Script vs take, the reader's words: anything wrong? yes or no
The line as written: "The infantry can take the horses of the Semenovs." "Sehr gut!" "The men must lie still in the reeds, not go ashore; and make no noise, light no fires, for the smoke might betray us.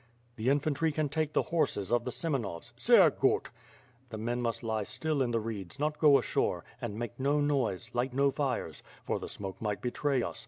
no